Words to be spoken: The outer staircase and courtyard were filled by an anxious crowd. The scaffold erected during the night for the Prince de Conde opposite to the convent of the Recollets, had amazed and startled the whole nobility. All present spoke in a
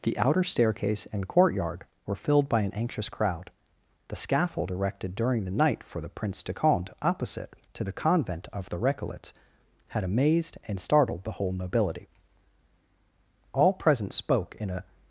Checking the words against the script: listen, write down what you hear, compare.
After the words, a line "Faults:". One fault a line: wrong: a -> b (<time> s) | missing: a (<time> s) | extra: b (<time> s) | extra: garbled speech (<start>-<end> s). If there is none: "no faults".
The outer staircase and courtyard were filled by an anxious crowd. The scaffold erected during the night for the Prince de Conde opposite to the convent of the Recollets, had amazed and startled the whole nobility. All present spoke in a
Faults:
no faults